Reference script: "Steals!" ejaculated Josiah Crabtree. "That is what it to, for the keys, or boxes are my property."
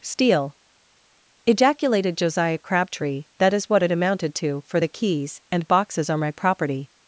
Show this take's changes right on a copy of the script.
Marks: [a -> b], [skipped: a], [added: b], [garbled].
["Steals!" -> Steal] ejaculated Josiah Crabtree. "That is what it [added: amounted] to, for the keys, [or -> and] boxes are my property."